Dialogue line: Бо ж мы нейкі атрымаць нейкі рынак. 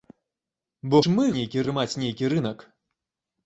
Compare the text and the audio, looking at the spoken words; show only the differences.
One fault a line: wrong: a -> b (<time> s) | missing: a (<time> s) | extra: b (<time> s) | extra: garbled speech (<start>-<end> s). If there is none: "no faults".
no faults